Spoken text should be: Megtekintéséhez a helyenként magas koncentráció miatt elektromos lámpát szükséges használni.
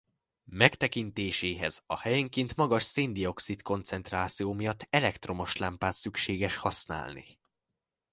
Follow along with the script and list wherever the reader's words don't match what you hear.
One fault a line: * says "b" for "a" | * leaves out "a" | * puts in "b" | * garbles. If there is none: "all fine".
* puts in "szén dioxid"